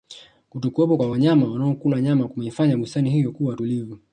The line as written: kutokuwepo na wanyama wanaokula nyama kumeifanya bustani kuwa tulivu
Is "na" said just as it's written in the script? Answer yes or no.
no